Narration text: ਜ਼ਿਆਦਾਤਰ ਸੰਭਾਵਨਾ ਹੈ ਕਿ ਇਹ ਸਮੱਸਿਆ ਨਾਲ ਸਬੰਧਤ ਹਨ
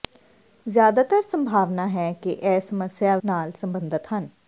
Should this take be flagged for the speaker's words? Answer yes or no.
no